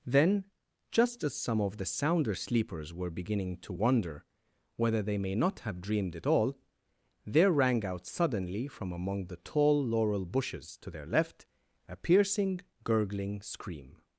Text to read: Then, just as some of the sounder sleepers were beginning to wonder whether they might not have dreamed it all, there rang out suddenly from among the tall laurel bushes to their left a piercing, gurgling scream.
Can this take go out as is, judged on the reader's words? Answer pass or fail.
fail